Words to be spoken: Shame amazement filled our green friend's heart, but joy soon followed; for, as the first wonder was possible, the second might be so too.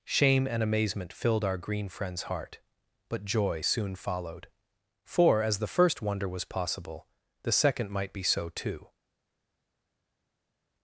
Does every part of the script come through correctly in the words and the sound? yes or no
no